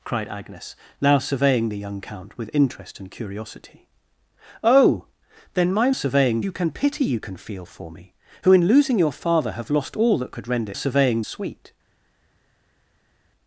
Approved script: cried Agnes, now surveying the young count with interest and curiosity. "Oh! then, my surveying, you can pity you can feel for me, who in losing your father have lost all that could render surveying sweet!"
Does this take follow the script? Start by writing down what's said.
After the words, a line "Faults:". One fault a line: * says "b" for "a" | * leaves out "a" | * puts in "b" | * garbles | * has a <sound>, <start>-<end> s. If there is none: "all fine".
cried Agnes, now surveying the young count with interest and curiosity. "Oh! then, my surveying, you can pity you can feel for me, who in losing your father have lost all that could render surveying sweet!"
Faults:
all fine